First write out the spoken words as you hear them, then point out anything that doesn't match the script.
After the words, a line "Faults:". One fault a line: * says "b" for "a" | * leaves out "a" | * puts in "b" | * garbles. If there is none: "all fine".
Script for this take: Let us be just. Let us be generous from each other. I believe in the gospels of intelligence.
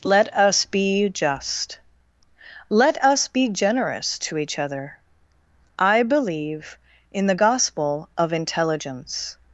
Let us be just. Let us be generous to each other. I believe in the gospel of intelligence.
Faults:
* says "to" for "from"
* says "gospel" for "gospels"